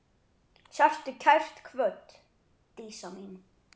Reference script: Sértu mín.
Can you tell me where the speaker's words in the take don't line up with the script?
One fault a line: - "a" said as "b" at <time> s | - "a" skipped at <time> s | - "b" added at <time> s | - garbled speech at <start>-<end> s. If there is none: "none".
- "kært kvödd Dísa" added at 1.2 s